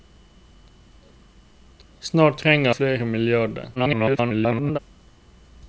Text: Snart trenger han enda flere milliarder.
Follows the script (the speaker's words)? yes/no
no